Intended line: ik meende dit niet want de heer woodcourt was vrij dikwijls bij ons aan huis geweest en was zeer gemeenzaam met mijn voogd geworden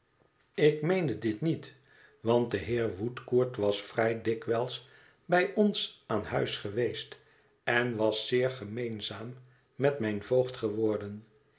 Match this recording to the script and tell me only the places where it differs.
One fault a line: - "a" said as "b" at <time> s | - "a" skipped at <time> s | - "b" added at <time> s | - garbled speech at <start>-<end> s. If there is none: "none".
none